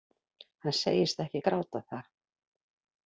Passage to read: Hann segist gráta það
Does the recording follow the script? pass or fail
fail